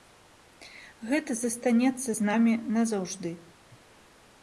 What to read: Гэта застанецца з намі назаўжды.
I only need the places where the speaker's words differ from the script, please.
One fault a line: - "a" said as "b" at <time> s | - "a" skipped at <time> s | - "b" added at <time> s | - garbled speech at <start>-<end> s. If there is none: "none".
none